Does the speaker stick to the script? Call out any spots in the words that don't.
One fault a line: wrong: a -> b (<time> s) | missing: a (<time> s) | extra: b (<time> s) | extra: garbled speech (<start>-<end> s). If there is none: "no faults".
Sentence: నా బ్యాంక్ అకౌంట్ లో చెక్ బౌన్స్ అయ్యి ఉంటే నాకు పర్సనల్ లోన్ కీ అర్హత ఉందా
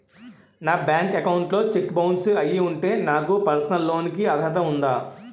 no faults